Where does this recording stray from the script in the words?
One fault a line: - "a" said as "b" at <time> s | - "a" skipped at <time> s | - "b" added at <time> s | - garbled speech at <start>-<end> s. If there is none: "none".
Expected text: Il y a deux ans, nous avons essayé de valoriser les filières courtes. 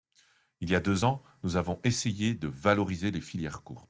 none